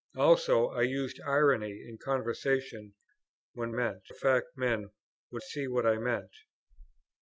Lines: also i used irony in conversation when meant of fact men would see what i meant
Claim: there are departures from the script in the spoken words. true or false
false